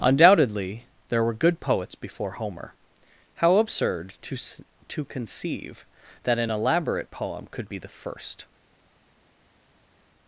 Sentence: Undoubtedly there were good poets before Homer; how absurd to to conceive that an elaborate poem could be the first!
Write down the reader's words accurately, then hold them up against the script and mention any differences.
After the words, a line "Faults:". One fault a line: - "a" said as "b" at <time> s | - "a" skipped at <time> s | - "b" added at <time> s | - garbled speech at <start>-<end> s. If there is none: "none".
Undoubtedly there were good poets before Homer; how absurd to to conceive that an elaborate poem could be the first!
Faults:
none